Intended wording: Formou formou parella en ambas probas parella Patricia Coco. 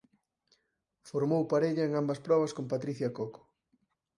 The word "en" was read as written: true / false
true